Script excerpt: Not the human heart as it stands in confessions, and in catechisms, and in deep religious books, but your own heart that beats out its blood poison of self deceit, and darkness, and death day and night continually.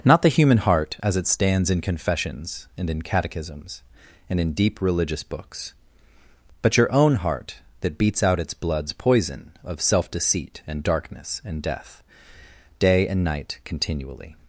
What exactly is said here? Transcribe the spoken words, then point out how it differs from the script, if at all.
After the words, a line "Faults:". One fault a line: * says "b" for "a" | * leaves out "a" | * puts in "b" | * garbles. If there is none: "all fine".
Not the human heart as it stands in confessions, and in catechisms, and in deep religious books, but your own heart that beats out its bloods poison of self deceit, and darkness, and death day and night continually.
Faults:
* says "bloods" for "blood"